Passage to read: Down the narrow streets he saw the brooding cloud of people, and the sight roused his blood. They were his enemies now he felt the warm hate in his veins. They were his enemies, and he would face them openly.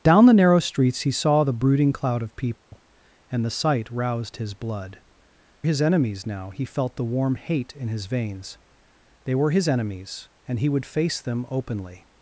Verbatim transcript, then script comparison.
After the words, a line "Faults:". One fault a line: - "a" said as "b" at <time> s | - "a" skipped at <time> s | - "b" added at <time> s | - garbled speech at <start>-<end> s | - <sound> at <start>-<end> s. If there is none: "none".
Down the narrow streets he saw the brooding cloud of people, and the sight roused his blood. His enemies now he felt the warm hate in his veins. They were his enemies, and he would face them openly.
Faults:
- dropout at 2.6-2.7 s
- "They were" skipped at 5.0 s